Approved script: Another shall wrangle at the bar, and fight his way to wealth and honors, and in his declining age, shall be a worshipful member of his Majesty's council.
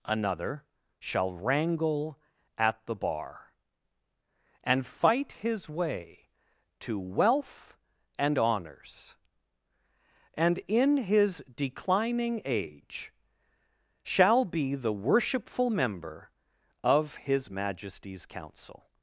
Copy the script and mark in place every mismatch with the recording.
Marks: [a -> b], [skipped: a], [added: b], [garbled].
Another shall wrangle at the bar, and fight his way to wealth and honors, and in his declining age, shall be [a -> the] worshipful member of his Majesty's council.